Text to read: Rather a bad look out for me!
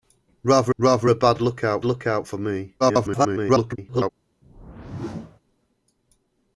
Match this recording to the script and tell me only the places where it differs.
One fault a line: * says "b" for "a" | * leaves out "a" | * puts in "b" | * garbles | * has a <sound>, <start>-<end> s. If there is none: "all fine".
* puts in "rather"
* puts in "look out"
* garbles
* has a whoosh, 4.4-5.4 s